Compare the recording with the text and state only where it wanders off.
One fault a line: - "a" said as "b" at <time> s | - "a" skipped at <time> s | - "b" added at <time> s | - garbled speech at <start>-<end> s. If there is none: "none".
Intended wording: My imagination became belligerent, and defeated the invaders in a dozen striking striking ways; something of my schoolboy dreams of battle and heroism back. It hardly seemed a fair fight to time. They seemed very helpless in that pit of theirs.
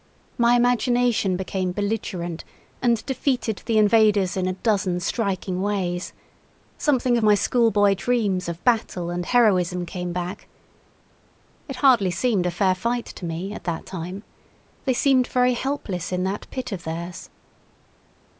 - "striking" skipped at 5.6 s
- "came" added at 9.8 s
- "me at that" added at 13.2 s